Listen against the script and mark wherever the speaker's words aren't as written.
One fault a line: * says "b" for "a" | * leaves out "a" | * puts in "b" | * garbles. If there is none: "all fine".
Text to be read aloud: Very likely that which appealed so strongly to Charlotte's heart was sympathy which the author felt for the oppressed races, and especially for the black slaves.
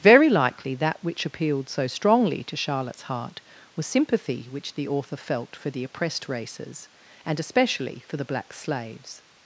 all fine